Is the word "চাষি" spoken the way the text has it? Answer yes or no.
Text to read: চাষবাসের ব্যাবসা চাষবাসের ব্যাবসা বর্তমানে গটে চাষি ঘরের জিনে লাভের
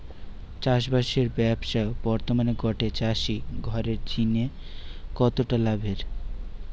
yes